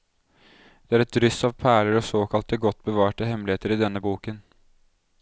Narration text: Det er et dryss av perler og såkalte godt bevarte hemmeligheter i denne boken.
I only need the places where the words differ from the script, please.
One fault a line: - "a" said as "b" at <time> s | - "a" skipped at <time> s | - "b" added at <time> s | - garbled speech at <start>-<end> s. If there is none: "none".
none